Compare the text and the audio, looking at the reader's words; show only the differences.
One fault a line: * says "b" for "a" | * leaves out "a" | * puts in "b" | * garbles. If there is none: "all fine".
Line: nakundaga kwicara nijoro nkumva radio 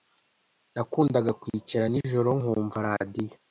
all fine